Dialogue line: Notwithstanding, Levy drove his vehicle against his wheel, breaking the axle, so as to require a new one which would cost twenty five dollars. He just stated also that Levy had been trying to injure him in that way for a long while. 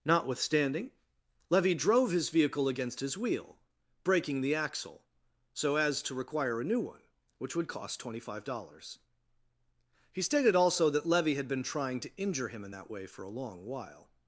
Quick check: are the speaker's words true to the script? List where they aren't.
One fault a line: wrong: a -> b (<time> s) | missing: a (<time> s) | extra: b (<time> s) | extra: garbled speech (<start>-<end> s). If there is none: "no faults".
missing: just (10.2 s)